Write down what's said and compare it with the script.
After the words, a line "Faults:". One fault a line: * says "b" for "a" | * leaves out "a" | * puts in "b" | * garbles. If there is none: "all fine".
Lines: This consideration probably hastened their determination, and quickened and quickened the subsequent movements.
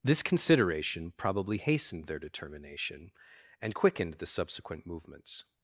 This consideration probably hastened their determination, and quickened the subsequent movements.
Faults:
* leaves out "and quickened"